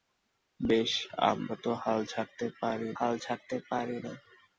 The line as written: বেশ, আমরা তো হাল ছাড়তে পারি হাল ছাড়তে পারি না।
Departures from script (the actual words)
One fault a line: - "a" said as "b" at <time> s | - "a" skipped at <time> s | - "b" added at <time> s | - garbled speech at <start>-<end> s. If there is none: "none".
none